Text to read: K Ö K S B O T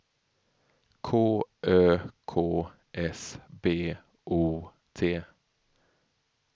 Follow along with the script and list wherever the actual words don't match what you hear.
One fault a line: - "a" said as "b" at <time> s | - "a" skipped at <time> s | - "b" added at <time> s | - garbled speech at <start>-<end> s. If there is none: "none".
none